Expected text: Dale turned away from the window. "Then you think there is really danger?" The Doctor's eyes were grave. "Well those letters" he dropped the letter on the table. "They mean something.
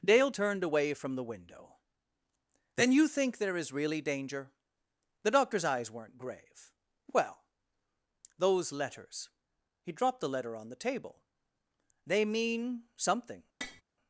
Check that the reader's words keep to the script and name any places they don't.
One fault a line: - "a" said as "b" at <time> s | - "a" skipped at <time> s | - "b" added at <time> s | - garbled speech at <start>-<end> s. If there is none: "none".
- "were" said as "weren't" at 5.9 s